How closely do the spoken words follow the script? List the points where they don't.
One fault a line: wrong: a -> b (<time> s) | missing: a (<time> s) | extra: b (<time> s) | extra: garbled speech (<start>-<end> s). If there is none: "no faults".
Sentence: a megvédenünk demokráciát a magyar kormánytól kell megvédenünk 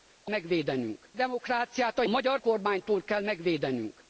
no faults